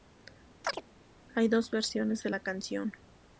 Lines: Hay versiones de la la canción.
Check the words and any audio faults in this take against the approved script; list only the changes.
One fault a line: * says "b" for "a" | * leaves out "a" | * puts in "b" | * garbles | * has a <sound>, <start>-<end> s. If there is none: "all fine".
* has a chirp, 0.6-0.8 s
* puts in "dos"
* leaves out "la"